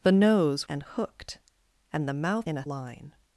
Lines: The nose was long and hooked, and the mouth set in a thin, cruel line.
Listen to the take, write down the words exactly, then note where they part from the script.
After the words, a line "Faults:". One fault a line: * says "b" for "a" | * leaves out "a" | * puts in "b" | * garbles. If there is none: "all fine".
The nose and hooked, and the mouth in a line.
Faults:
* leaves out "was long"
* leaves out "set"
* leaves out "thin cruel"